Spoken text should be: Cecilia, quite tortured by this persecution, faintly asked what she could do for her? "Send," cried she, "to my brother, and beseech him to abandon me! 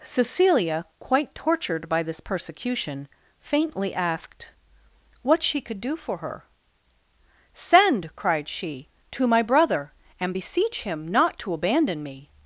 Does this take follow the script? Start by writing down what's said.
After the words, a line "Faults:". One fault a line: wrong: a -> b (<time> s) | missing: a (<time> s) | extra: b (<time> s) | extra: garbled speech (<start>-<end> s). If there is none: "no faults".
Cecilia, quite tortured by this persecution, faintly asked what she could do for her? "Send," cried she, "to my brother, and beseech him not to abandon me!
Faults:
extra: not (11.1 s)